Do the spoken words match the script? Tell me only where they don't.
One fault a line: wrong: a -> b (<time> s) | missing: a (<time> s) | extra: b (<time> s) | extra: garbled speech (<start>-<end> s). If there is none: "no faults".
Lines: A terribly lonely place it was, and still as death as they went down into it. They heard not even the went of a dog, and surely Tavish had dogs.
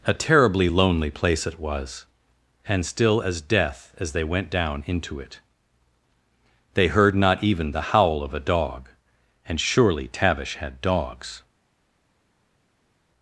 wrong: went -> howl (7.8 s)